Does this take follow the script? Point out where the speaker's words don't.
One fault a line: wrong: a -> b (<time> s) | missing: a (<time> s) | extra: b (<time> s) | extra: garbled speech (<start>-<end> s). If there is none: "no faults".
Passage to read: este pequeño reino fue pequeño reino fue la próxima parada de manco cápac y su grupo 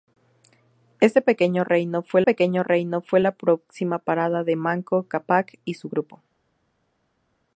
no faults